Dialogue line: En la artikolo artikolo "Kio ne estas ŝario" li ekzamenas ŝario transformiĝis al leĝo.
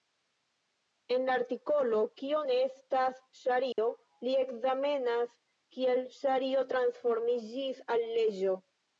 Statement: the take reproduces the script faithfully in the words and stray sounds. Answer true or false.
false